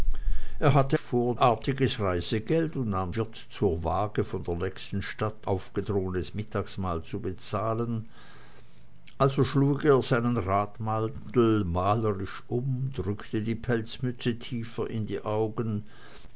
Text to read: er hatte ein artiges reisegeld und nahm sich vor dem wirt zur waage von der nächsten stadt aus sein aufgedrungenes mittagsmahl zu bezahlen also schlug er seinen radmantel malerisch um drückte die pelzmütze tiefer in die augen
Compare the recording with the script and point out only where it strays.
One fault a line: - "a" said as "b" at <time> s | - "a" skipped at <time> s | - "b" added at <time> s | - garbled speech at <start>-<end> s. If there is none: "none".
- "ein" said as "vor" at 1.0 s
- "sich vor dem" skipped at 3.1 s
- "aus sein" skipped at 5.5 s